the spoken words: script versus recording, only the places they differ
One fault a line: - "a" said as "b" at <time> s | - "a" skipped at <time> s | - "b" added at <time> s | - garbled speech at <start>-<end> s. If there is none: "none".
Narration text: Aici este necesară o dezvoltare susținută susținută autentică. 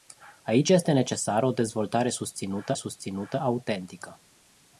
none